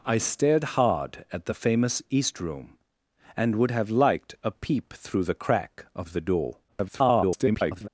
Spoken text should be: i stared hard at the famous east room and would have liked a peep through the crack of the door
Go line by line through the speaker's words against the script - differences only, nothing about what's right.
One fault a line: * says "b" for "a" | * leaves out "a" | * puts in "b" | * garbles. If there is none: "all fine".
* garbles